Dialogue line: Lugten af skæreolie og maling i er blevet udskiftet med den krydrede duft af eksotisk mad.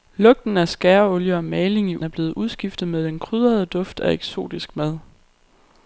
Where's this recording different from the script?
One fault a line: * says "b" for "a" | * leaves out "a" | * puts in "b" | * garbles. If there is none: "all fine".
all fine